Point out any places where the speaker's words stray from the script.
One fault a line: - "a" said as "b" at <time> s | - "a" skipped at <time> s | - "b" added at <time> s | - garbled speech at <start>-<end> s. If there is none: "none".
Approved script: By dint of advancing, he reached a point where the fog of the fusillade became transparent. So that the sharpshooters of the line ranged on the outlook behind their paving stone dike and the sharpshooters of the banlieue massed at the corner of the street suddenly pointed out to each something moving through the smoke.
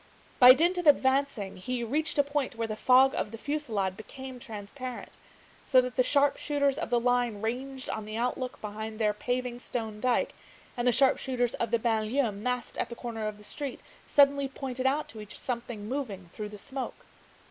none